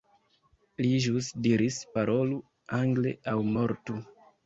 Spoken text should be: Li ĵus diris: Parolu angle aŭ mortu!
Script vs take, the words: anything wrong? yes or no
no